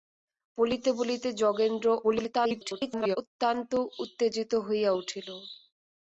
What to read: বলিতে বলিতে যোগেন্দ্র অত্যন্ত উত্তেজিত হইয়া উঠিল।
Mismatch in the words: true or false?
true